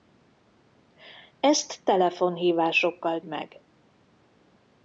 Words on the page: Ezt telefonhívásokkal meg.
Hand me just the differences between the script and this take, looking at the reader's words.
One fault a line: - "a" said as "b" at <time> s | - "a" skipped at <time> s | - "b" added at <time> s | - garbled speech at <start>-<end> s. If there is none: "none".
none